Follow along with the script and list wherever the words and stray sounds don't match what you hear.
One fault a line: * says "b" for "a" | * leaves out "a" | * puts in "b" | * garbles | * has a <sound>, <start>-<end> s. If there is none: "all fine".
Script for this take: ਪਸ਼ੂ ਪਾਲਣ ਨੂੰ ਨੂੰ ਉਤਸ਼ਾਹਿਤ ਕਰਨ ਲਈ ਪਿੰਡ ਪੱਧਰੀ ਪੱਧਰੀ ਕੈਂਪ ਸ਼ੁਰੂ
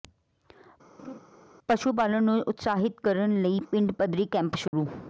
* has a laugh, 1.0-1.2 s
* leaves out "ਨੂੰ"
* leaves out "ਪੱਧਰੀ"
* has a dropout, 4.7-4.7 s